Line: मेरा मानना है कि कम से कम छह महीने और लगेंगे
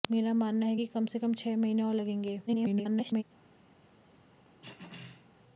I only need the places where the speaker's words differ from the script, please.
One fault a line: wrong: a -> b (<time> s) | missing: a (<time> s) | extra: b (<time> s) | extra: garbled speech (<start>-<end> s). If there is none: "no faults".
extra: garbled speech (2.5-3.2 s)